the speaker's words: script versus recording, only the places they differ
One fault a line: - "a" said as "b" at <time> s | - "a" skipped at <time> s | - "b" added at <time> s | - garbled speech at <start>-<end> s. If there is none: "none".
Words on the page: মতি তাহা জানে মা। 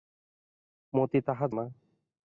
- "জানে" skipped at 1.4 s